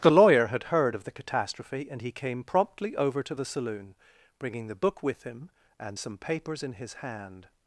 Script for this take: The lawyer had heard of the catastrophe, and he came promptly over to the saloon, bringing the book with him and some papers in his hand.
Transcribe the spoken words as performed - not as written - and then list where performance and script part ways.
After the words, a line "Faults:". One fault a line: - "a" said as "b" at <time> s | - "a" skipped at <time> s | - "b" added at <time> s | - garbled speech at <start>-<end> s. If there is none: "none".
The lawyer had heard of the catastrophe, and he came promptly over to the saloon, bringing the book with him and some papers in his hand.
Faults:
none